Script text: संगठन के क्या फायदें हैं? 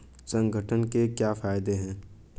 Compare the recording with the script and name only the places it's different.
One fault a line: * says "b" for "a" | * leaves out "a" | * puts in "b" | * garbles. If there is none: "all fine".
all fine